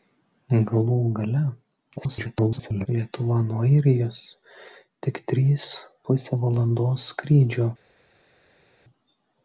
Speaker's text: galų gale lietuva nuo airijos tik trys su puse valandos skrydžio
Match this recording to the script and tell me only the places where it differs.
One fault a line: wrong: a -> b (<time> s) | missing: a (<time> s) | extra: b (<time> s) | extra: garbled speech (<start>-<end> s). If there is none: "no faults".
extra: garbled speech (2.0-2.9 s)
missing: su (5.7 s)